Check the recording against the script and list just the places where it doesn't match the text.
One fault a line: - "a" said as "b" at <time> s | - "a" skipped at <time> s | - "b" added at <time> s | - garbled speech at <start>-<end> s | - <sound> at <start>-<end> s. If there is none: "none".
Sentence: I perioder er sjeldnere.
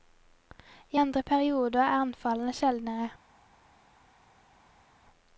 - "andre" added at 1.0 s
- "anfallene" added at 2.0 s